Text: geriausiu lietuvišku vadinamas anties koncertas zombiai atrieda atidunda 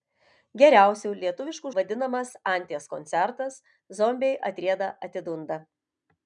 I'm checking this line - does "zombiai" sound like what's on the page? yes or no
yes